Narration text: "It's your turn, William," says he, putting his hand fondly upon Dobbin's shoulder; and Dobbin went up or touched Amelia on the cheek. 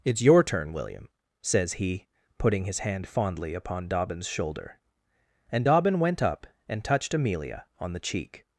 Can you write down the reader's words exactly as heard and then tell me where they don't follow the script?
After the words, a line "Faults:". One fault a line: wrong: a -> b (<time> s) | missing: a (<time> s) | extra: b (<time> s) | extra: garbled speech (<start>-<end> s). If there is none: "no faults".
"It's your turn, William," says he, putting his hand fondly upon Dobbin's shoulder; and Dobbin went up and touched Amelia on the cheek.
Faults:
wrong: or -> and (6.7 s)